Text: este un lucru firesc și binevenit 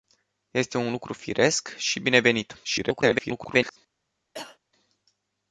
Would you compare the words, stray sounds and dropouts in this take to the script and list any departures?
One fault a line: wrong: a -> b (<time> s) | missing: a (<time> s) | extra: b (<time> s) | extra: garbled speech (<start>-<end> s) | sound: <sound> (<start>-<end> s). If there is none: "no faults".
extra: garbled speech (2.6-3.8 s)
sound: cough (4.3-4.6 s)